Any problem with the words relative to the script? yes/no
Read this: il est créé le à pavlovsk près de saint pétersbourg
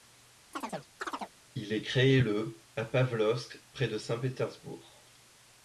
no